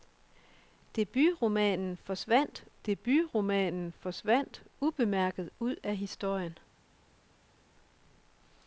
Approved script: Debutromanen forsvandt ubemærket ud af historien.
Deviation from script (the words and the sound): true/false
true